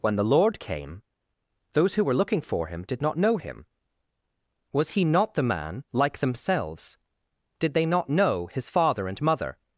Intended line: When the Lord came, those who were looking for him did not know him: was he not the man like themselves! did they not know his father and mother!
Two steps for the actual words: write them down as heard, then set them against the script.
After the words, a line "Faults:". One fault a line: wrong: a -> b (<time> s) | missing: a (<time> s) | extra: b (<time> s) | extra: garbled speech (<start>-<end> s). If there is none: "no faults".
When the Lord came, those who were looking for him did not know him: was he not the man like themselves! did they not know his father and mother!
Faults:
no faults